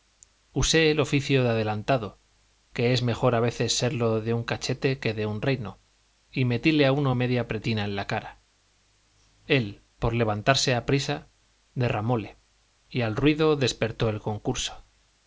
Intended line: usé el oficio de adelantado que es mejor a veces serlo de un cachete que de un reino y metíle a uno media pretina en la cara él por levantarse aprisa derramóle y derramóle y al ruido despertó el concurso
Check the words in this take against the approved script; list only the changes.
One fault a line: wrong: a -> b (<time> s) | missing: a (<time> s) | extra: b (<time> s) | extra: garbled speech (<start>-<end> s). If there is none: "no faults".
missing: derramóle y (13.0 s)